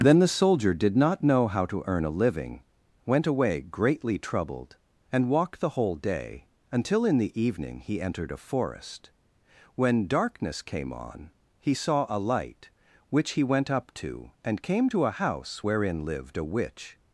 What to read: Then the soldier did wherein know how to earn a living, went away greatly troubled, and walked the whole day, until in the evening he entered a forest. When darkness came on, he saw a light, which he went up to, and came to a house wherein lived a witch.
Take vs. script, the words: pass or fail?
fail